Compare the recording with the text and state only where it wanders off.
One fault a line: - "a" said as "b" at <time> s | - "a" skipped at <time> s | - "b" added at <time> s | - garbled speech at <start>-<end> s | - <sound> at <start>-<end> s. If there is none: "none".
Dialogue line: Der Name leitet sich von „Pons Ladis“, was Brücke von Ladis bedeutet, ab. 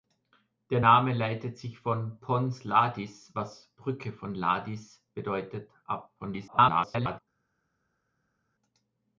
- garbled speech at 6.2-7.2 s